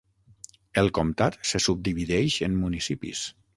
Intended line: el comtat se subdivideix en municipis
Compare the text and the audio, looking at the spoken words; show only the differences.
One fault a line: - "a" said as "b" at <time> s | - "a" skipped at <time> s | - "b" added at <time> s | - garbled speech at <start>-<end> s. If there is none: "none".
none